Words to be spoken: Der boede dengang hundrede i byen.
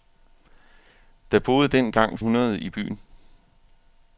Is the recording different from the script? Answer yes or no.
no